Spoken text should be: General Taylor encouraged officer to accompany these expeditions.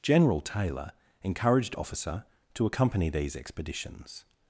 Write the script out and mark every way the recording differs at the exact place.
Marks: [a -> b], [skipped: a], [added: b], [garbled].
General Taylor encouraged officer to accompany these expeditions.